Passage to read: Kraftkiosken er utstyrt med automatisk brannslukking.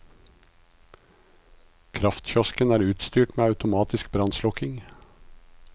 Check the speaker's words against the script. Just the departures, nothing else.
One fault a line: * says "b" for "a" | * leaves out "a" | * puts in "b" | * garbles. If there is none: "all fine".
all fine